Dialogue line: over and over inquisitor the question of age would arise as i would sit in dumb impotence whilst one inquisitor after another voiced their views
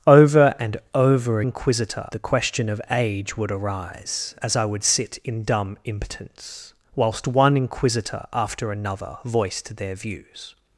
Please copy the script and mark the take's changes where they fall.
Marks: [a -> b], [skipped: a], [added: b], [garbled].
over and over inquisitor the question of age would arise as i would sit in dumb impotence whilst one inquisitor after another voiced their views